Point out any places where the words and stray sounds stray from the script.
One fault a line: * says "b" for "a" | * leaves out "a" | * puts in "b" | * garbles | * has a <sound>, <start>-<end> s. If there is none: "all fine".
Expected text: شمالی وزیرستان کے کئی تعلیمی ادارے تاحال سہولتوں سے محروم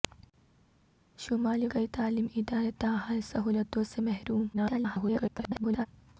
* leaves out "وزیرستان کے"
* garbles